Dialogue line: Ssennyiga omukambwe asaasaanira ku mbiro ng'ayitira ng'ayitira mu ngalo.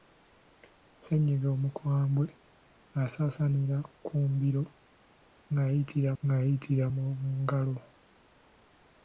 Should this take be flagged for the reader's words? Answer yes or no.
no